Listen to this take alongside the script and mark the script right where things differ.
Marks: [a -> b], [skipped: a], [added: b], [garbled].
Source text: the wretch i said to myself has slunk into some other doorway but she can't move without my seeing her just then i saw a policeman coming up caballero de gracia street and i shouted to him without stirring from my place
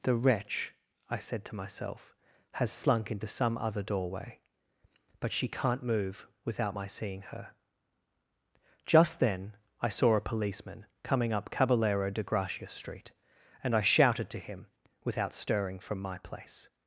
the wretch i said to myself has slunk into some other doorway but she can't move without my seeing her just then i saw a policeman coming up caballero de gracia street and i shouted to him without stirring from my place